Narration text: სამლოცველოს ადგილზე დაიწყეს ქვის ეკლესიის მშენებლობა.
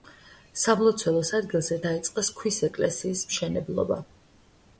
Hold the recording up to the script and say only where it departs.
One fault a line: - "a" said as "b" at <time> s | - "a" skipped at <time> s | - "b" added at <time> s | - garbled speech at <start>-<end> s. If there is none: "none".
none